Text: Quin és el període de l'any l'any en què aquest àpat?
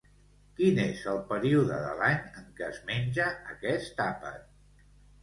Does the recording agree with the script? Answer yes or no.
no